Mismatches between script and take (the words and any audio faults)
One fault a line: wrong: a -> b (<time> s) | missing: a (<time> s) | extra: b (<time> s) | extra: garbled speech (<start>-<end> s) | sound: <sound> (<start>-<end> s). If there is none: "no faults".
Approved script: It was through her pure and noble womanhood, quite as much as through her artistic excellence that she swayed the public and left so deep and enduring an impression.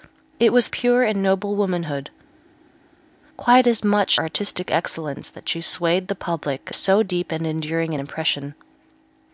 missing: through her (0.7 s)
missing: as through her (4.2 s)
missing: and left (6.7 s)